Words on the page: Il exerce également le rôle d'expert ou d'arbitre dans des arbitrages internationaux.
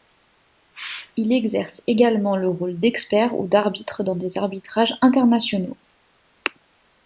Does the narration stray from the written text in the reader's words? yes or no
no